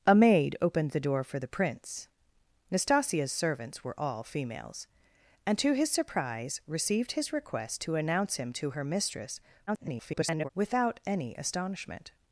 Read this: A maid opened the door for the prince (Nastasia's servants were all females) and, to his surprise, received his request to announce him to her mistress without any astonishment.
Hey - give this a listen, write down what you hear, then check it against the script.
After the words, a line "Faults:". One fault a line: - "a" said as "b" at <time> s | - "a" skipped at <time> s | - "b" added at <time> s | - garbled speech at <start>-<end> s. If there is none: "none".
A maid opened the door for the prince (Nastasia's servants were all females) and, to his surprise, received his request to announce him to her mistress [garbled] without any astonishment.
Faults:
- garbled speech at 9.7-10.5 s